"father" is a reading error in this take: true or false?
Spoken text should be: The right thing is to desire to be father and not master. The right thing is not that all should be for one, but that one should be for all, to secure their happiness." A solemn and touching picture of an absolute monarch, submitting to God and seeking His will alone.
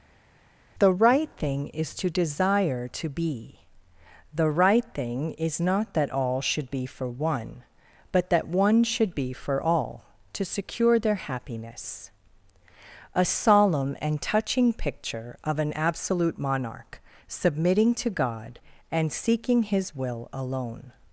true